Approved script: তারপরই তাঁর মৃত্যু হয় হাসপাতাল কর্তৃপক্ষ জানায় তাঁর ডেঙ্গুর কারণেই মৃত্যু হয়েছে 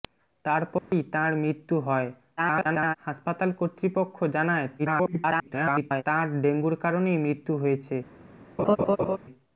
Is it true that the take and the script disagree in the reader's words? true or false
true